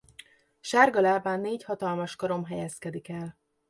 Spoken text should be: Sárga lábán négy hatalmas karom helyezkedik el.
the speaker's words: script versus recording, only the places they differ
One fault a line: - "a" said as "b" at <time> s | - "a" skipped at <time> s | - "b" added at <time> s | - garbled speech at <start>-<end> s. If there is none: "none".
none